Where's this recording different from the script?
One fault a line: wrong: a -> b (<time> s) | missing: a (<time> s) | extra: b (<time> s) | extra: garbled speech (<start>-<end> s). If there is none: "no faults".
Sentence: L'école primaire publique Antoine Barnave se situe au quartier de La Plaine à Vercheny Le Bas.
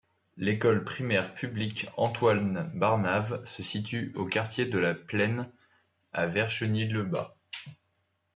no faults